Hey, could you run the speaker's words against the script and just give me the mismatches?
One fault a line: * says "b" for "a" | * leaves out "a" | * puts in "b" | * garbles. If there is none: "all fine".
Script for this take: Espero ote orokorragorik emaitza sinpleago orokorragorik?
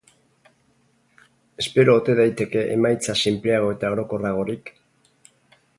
* says "daiteke" for "orokorragorik"
* puts in "eta"